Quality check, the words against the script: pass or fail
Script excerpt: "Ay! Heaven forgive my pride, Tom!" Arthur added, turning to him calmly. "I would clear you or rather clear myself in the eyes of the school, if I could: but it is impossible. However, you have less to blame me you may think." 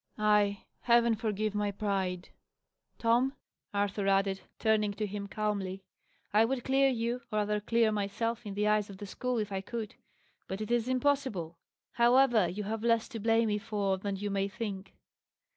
fail